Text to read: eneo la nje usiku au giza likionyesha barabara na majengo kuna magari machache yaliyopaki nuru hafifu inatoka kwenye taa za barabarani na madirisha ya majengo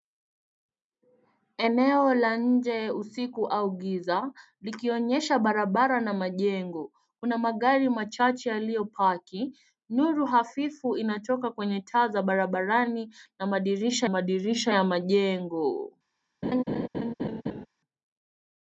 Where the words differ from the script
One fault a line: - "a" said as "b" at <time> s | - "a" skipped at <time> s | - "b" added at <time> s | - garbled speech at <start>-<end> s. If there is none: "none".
- "madirisha" added at 14.1 s